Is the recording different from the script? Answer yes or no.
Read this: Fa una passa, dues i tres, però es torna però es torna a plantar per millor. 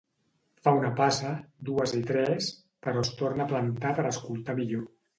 yes